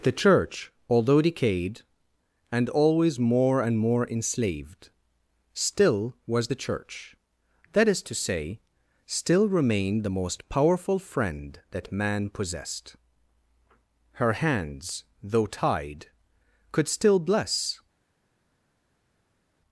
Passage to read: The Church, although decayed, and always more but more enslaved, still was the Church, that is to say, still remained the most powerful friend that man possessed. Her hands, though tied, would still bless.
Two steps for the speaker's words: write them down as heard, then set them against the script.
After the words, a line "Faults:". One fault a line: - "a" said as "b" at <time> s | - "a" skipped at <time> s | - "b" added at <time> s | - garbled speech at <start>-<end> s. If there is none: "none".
The Church, although decayed, and always more and more enslaved, still was the Church, that is to say, still remained the most powerful friend that man possessed. Her hands, though tied, could still bless.
Faults:
- "but" said as "and" at 3.6 s
- "would" said as "could" at 16.7 s